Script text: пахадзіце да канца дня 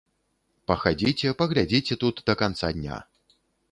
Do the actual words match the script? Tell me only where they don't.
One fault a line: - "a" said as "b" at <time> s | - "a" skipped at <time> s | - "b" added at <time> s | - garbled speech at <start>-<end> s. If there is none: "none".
- "паглядзіце тут" added at 1.4 s